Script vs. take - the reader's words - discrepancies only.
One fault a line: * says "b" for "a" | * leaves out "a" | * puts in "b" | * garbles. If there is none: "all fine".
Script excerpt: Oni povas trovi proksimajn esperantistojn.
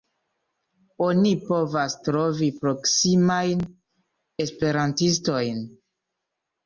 all fine